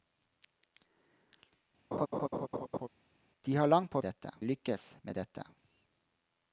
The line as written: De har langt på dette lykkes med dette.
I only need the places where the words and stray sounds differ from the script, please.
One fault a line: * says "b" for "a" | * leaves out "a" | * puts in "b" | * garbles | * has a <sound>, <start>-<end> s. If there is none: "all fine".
* has a laugh, 1.9-2.9 s